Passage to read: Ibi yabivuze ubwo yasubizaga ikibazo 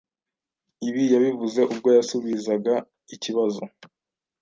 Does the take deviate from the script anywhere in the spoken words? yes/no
no